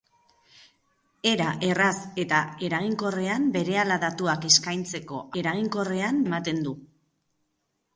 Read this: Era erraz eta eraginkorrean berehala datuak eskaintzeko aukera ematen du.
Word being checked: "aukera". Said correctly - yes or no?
no